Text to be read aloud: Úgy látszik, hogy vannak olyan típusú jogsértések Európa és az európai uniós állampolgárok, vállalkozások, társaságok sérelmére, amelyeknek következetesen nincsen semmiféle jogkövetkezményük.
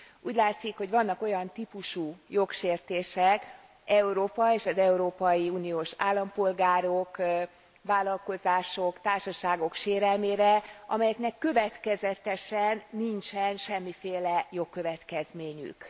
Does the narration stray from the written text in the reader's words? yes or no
no